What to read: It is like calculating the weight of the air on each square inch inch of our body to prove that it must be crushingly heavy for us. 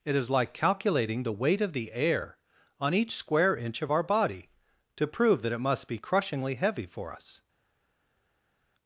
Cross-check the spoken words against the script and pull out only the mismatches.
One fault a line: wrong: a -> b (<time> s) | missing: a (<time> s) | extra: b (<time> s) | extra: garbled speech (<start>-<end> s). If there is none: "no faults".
missing: inch (3.8 s)